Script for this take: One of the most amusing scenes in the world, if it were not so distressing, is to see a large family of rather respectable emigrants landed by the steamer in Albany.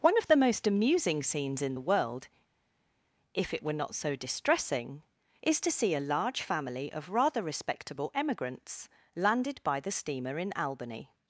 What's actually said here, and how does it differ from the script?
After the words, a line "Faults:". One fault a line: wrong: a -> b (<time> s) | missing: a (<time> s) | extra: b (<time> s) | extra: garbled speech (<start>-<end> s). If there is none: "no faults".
One of the most amusing scenes in the world, if it were not so distressing, is to see a large family of rather respectable emigrants landed by the steamer in Albany.
Faults:
no faults